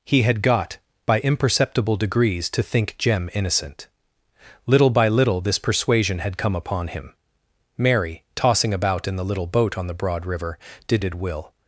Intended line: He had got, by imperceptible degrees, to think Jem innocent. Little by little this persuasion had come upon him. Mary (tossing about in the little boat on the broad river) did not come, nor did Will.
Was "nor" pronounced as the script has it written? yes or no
no